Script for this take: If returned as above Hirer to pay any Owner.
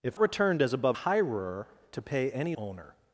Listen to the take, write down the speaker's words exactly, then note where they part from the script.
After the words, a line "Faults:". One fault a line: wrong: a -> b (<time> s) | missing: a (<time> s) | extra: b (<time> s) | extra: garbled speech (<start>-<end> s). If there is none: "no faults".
If returned as above Hirer to pay any Owner.
Faults:
no faults